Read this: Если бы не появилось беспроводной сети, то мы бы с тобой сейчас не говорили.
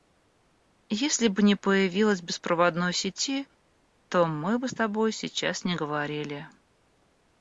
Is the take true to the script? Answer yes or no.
yes